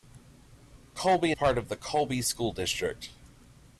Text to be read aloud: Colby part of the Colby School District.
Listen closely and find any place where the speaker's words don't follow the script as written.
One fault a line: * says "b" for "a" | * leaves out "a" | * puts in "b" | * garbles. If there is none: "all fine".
all fine